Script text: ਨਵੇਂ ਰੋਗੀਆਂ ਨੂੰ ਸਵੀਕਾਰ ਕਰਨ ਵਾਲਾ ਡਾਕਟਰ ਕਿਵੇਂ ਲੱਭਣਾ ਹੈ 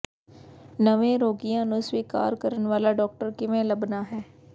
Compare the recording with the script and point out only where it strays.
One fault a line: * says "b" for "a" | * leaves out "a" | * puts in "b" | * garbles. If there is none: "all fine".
all fine